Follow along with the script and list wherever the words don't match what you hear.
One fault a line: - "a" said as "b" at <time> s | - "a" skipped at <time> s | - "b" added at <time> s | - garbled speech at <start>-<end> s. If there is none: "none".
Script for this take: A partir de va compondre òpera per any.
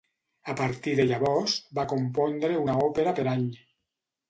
- "llavors" added at 1.1 s
- "una" added at 2.7 s